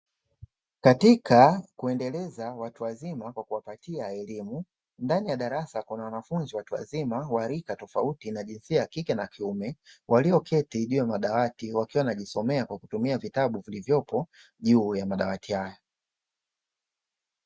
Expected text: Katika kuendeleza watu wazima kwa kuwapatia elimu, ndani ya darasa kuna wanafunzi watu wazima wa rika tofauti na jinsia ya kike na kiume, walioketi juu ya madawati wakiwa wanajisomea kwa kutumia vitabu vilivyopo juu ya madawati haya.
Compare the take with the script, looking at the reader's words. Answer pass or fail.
pass